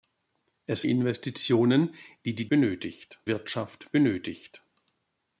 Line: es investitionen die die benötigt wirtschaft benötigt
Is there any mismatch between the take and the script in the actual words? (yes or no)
no